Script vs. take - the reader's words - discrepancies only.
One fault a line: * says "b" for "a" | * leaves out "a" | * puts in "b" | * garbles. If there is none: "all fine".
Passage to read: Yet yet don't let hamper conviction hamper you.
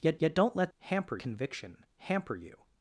all fine